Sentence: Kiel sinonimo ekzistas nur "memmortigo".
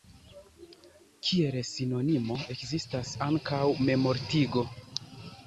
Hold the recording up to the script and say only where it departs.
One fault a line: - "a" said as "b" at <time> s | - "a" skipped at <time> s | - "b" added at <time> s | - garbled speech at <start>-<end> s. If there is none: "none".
- "nur" said as "ankaŭ" at 3.3 s